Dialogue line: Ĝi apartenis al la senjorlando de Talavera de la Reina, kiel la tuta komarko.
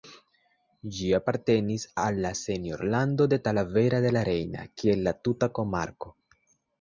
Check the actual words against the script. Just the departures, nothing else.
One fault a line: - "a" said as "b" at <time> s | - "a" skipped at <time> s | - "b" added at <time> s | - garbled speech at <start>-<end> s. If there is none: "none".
none